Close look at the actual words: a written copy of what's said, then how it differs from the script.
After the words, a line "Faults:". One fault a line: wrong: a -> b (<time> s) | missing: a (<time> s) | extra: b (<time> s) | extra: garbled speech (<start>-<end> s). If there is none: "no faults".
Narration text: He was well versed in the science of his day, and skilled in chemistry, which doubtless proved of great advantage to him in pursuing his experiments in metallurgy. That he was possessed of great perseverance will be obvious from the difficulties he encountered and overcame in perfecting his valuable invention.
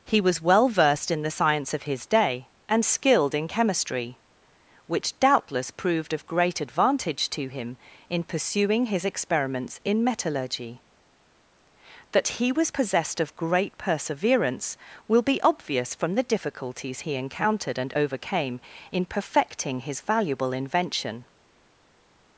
He was well versed in the science of his day, and skilled in chemistry, which doubtless proved of great advantage to him in pursuing his experiments in metallurgy. That he was possessed of great perseverance will be obvious from the difficulties he encountered and overcame in perfecting his valuable invention.
Faults:
no faults